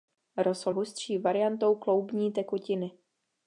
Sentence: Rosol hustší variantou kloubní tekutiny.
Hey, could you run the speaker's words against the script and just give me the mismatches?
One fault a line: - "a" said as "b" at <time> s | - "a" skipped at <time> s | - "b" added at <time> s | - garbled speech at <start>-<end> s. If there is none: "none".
none